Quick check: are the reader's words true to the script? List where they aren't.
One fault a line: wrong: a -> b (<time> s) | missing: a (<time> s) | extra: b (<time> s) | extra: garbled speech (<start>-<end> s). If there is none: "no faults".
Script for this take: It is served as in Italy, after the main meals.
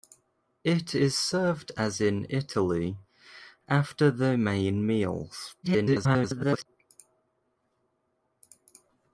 extra: garbled speech (5.6-6.7 s)